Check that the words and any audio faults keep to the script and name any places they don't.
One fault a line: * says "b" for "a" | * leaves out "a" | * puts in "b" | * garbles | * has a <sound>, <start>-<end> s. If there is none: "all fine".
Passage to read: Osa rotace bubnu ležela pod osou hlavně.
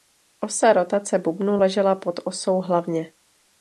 all fine